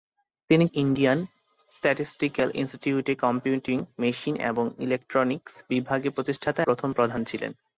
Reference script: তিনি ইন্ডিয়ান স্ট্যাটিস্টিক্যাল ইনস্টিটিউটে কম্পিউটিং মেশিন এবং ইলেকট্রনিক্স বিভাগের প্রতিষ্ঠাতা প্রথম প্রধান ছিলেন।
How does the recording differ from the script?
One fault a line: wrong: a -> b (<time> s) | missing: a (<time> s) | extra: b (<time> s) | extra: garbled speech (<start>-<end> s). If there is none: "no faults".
no faults